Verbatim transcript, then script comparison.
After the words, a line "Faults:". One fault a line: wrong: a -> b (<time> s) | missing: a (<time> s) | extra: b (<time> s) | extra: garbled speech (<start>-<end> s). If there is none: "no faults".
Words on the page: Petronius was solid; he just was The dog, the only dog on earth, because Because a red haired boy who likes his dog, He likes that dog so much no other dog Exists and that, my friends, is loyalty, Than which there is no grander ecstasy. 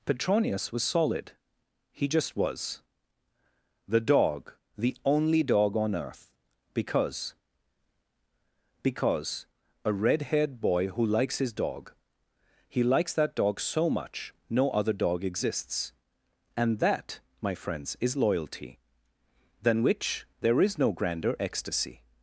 Petronius was solid; he just was The dog, the only dog on earth, because Because a red haired boy who likes his dog, He likes that dog so much no other dog Exists and that, my friends, is loyalty, Than which there is no grander ecstasy.
Faults:
no faults